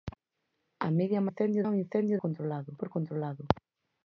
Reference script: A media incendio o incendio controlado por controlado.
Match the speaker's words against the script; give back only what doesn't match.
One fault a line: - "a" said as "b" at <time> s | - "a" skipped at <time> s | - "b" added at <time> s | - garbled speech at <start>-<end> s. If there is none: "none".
none